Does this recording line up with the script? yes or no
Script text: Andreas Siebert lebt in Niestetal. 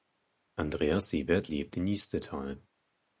yes